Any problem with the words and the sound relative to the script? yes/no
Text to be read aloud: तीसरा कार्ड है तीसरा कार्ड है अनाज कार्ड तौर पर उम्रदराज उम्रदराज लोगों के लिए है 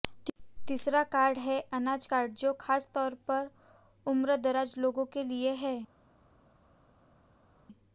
yes